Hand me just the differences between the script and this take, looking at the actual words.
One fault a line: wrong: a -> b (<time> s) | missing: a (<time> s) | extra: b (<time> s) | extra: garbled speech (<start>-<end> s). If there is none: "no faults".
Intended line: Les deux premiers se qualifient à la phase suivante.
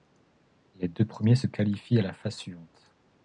no faults